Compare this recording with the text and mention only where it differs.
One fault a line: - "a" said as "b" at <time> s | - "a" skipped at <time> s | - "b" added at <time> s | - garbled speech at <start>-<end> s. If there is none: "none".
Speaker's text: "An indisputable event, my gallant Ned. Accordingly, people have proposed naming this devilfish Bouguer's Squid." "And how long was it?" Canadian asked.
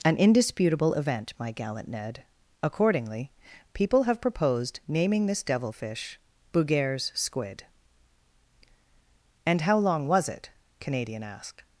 none